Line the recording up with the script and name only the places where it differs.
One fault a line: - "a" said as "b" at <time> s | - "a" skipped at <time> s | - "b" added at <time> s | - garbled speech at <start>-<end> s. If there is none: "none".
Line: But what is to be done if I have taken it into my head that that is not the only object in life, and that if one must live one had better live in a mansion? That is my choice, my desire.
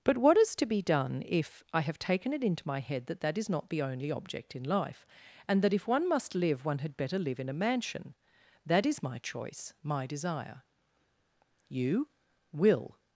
- "You will" added at 11.7 s